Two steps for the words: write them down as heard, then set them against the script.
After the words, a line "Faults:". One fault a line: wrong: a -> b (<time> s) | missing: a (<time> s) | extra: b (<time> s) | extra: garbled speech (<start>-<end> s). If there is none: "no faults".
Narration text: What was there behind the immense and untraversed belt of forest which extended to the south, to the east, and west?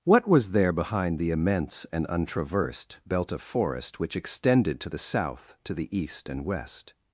What was there behind the immense and untraversed belt of forest which extended to the south, to the east, and west?
Faults:
no faults